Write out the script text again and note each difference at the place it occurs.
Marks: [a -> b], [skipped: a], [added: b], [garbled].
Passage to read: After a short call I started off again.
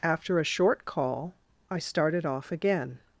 After a short call I started off again.